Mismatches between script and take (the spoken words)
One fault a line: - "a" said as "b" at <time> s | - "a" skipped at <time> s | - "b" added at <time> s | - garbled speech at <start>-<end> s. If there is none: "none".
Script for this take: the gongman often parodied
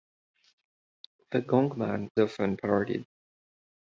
none